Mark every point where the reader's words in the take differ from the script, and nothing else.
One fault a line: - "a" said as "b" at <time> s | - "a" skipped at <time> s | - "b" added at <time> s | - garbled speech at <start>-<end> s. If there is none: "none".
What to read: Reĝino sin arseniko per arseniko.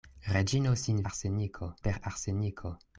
none